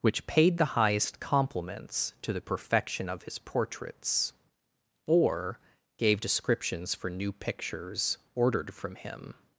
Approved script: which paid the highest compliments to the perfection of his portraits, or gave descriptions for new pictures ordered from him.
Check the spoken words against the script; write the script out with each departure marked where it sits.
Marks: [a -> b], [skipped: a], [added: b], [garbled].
which paid the highest compliments to the perfection of his portraits, or gave descriptions for new pictures ordered from him.